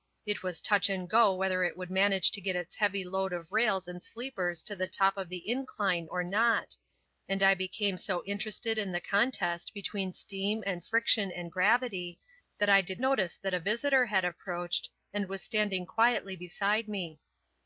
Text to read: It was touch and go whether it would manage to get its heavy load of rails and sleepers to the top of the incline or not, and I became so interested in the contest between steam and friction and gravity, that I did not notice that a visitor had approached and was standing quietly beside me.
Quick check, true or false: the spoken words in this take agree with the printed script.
false